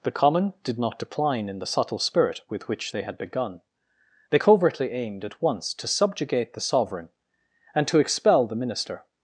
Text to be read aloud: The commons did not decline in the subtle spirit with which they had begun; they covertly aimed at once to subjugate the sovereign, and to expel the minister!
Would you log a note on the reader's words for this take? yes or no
yes